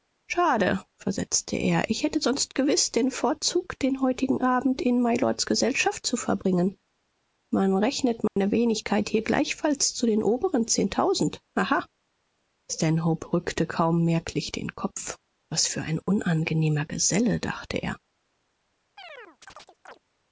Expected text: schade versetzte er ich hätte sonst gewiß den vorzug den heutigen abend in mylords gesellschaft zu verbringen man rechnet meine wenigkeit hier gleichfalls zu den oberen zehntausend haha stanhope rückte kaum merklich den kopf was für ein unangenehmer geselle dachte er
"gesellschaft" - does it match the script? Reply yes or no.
yes